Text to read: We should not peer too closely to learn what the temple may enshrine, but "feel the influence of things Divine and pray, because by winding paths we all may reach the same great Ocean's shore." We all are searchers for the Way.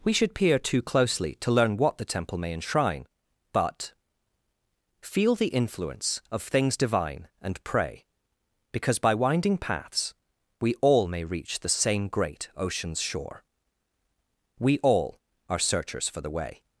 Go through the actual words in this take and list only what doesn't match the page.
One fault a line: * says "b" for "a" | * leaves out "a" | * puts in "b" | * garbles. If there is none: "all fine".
* leaves out "not"